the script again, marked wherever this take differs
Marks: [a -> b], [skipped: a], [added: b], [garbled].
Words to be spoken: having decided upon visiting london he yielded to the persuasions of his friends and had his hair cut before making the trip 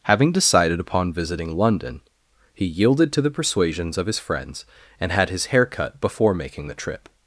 having decided upon visiting london he yielded to the persuasions of his friends and had his hair cut before making the trip